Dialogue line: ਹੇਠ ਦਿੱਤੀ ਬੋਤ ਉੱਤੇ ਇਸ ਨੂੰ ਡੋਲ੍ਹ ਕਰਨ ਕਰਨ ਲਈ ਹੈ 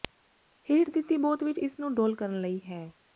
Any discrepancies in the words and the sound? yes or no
yes